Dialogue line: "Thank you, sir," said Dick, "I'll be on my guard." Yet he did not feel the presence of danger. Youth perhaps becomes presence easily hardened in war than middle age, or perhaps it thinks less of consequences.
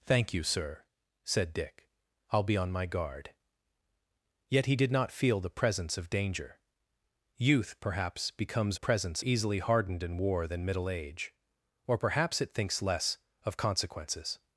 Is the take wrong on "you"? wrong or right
right